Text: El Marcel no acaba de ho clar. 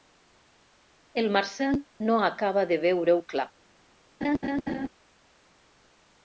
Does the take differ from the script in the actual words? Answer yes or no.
yes